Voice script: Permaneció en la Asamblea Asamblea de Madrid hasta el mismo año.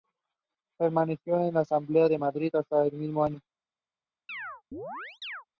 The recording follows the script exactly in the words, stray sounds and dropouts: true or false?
false